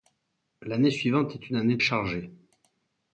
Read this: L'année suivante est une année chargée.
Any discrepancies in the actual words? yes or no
no